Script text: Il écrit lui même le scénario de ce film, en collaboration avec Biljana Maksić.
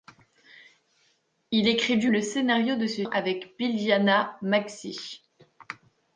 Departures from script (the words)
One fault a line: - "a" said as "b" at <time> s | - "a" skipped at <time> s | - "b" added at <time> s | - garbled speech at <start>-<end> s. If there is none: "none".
- "même" skipped at 2.1 s
- "film en collaboration" skipped at 3.0 s